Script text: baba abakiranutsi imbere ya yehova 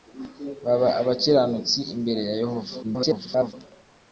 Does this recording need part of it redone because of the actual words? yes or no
yes